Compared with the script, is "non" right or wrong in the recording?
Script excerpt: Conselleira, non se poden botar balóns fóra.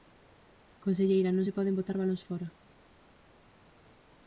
right